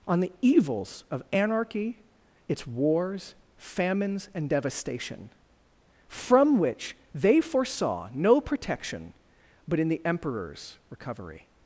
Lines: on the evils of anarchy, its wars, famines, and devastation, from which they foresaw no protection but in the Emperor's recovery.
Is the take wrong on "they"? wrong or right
right